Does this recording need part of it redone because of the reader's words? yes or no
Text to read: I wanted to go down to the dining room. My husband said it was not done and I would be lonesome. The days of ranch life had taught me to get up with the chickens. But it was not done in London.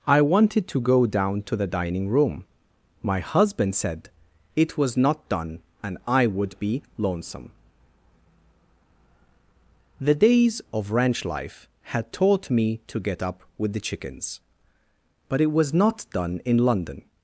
no